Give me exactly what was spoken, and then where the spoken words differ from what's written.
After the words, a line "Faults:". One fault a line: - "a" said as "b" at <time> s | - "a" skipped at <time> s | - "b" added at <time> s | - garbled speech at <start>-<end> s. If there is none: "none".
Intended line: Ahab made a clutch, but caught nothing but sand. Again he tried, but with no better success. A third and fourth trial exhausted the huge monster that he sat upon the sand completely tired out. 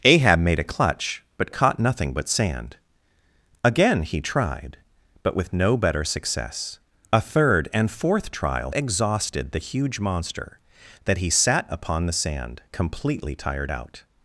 Ahab made a clutch, but caught nothing but sand. Again he tried, but with no better success. A third and fourth trial exhausted the huge monster that he sat upon the sand completely tired out.
Faults:
none